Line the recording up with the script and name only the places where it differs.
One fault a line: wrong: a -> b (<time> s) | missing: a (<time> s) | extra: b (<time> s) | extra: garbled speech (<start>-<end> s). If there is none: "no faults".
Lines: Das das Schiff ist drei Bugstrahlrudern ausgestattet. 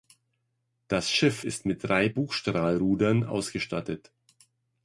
missing: das (1.1 s)
extra: mit (1.6 s)